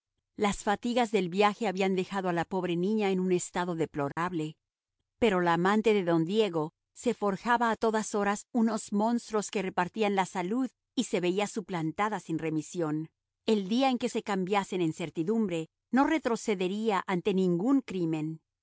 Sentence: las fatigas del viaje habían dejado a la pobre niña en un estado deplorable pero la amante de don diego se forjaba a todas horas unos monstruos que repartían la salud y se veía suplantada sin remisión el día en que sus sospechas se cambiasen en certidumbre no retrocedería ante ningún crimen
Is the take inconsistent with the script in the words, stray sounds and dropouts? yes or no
yes